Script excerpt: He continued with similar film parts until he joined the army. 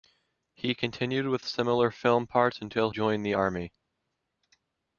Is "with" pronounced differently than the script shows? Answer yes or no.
no